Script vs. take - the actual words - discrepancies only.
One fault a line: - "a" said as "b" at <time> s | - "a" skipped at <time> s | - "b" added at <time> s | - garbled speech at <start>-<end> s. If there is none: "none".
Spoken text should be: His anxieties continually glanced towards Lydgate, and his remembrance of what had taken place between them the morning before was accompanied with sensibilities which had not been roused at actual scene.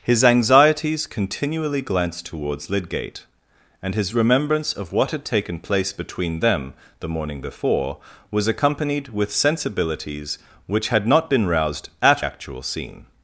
none